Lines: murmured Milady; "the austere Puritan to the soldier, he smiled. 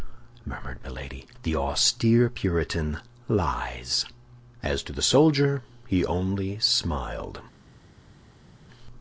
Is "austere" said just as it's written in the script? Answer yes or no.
yes